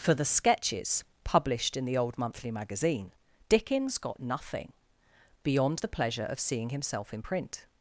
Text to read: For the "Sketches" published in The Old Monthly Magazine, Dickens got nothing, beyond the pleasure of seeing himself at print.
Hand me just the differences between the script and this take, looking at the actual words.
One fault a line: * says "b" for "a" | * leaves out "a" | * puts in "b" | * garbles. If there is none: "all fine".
* says "in" for "at"